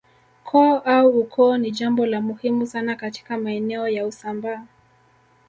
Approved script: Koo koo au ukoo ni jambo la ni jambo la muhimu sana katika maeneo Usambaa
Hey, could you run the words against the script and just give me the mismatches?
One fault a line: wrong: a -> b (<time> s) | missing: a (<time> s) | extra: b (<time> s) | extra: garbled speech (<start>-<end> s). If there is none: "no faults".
missing: koo (0.8 s)
missing: ni jambo la (2.2 s)
extra: ya (3.9 s)